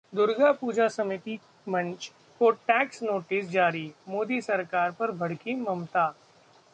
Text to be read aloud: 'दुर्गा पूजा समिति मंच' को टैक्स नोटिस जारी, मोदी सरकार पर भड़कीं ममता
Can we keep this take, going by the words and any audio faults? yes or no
yes